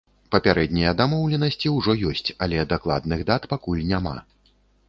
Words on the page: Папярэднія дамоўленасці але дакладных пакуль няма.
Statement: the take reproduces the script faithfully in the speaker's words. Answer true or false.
false